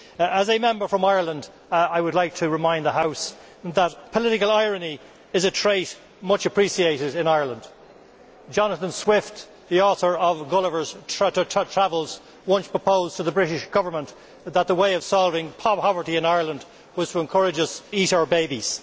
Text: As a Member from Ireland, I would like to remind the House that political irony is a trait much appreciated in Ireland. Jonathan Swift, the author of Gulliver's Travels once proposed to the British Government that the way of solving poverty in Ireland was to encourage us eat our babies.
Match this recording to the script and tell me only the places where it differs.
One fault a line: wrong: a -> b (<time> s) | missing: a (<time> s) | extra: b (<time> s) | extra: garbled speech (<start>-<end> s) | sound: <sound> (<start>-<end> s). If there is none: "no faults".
no faults